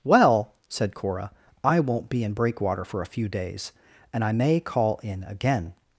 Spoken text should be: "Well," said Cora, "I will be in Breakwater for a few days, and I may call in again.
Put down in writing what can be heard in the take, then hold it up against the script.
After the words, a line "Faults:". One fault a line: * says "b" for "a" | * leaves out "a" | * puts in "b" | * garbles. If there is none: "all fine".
"Well," said Cora, "I won't be in Breakwater for a few days, and I may call in again.
Faults:
* says "won't" for "will"